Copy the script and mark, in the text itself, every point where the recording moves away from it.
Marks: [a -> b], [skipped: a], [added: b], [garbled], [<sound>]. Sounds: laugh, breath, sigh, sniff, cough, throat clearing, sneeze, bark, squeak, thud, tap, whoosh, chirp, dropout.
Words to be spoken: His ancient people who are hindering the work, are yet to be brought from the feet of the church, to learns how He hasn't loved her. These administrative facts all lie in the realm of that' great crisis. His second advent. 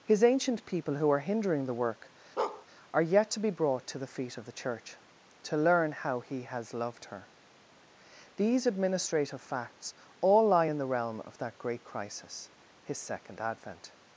His ancient people who are hindering the work, [bark] are yet to be brought [from -> to] the feet of the church, to [learns -> learn] how He [hasn't -> has] loved her. These administrative facts all lie in the realm of that' great crisis. His second advent.